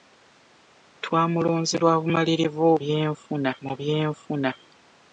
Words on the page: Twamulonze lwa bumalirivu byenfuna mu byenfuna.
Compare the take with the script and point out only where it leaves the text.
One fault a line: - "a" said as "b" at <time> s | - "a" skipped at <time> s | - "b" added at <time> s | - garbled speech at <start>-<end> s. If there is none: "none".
none